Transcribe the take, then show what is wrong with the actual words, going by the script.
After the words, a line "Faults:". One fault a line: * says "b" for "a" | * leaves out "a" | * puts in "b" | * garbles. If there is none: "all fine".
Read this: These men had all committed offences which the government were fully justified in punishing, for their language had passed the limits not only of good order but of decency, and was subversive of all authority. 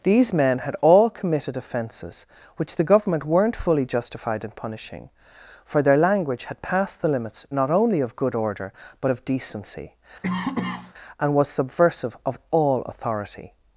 These men had all committed offences which the government weren't fully justified in punishing, for their language had passed the limits not only of good order but of decency, and was subversive of all authority.
Faults:
* says "weren't" for "were"